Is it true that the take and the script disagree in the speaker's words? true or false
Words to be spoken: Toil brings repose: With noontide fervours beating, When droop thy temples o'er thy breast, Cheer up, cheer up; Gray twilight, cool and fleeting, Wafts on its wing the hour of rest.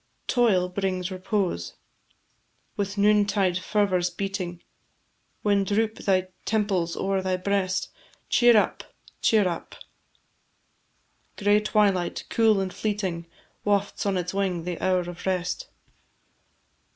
false